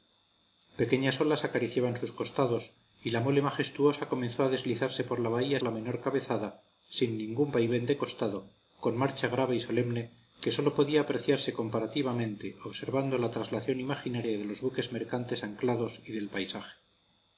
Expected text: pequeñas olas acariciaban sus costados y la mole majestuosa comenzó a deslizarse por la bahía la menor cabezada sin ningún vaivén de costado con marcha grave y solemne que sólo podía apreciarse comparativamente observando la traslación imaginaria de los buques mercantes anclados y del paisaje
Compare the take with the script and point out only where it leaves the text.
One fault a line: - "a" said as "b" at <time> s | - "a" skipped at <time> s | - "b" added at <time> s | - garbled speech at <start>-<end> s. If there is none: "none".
none